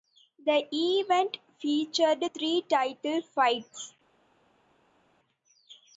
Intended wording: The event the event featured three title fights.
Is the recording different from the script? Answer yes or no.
yes